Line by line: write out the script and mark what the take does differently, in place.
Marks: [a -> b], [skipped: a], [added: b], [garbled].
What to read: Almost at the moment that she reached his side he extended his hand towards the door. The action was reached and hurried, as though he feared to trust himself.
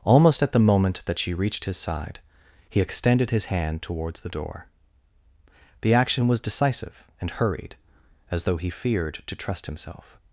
Almost at the moment that she reached his side he extended his hand towards the door. The action was [reached -> decisive] and hurried, as though he feared to trust himself.